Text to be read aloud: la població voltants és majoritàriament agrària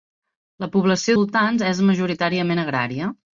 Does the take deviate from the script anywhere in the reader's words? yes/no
no